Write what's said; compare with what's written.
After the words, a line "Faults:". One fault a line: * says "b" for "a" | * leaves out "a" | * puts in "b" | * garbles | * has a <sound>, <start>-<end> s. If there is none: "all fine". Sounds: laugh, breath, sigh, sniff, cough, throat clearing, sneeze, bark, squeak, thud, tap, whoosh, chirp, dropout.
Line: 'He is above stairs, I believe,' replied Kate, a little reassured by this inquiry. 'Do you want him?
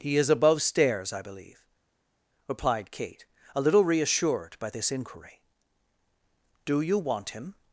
'He is above stairs, I believe,' replied Kate, a little reassured by this inquiry. 'Do you want him?
Faults:
all fine